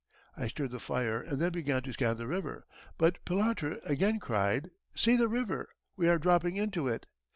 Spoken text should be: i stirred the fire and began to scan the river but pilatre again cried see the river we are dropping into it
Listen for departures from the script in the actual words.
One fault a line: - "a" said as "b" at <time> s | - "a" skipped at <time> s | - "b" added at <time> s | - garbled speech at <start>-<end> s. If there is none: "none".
- "then" added at 1.4 s